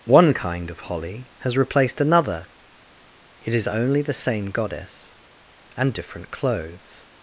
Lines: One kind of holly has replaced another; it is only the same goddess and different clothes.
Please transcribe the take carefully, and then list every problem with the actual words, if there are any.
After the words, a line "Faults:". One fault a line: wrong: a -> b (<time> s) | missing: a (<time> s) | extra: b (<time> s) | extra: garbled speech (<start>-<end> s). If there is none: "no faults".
One kind of holly has replaced another; it is only the same goddess and different clothes.
Faults:
no faults